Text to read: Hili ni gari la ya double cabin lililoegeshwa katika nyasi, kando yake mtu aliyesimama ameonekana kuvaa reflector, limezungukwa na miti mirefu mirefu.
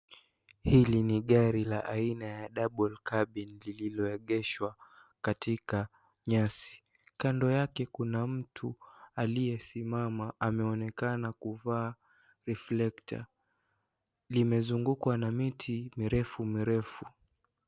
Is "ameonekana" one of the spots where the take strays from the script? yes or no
no